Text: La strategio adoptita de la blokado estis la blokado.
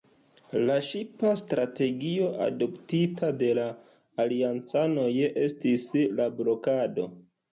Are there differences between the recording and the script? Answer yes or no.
yes